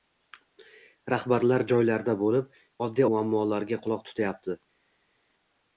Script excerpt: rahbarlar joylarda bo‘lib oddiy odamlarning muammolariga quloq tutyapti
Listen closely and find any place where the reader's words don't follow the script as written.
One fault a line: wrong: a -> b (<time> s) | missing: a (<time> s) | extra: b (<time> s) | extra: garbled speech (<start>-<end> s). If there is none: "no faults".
missing: odamlarning (3.1 s)